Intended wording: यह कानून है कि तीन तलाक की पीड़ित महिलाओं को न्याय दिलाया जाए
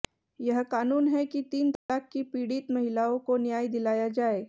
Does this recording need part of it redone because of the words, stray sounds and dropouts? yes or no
yes